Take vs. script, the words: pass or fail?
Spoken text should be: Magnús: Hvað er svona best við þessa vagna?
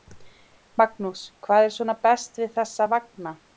pass